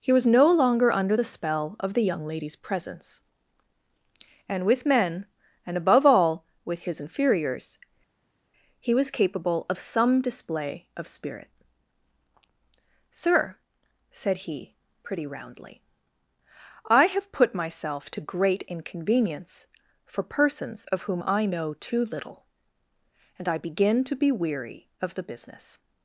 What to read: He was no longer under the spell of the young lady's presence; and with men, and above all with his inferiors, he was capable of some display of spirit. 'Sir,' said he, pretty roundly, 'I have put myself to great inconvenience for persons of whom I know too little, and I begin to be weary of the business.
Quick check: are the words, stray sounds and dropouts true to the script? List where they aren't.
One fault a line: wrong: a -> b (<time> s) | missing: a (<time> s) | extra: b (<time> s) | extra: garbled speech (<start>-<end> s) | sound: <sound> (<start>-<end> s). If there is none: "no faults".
no faults